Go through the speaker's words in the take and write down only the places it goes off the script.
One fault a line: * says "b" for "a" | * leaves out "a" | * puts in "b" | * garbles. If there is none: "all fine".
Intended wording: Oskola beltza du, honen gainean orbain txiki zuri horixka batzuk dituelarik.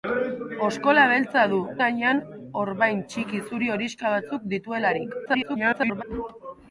* leaves out "honen"
* garbles